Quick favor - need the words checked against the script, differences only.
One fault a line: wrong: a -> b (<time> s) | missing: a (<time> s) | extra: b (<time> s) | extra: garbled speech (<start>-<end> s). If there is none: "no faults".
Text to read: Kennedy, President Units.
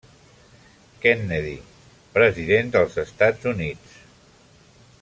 extra: dels Estats (2.8 s)